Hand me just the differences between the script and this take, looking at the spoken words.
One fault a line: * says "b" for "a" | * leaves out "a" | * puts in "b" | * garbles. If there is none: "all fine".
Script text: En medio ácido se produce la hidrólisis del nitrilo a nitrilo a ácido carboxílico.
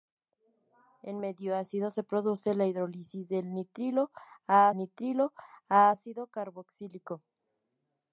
all fine